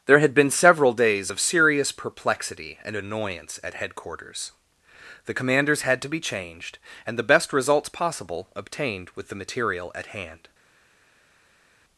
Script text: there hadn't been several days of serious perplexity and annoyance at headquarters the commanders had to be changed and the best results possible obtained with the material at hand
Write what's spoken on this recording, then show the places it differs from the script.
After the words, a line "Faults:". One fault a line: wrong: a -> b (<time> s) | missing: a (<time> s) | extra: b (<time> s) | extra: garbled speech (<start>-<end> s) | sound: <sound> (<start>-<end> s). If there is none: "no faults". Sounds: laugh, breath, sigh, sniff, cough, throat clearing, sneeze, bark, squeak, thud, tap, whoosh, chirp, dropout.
there had been several days of serious perplexity and annoyance at headquarters the commanders had to be changed and the best results possible obtained with the material at hand
Faults:
wrong: hadn't -> had (0.2 s)